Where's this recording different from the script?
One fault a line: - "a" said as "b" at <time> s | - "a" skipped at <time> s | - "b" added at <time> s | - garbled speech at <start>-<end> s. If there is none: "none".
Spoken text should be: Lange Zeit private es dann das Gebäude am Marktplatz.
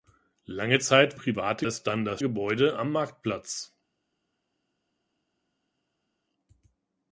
none